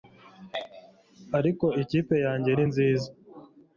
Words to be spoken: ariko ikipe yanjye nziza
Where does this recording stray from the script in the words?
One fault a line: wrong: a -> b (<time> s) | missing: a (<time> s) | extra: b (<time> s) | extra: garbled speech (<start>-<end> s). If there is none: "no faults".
extra: ni (2.5 s)